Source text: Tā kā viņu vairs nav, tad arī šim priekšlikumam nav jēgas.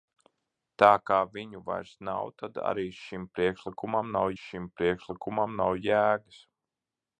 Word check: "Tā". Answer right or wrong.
right